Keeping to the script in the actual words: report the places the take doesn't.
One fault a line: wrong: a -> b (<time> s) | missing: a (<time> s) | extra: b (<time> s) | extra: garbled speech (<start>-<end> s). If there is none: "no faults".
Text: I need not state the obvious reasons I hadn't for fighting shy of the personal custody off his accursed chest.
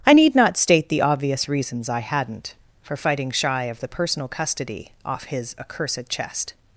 no faults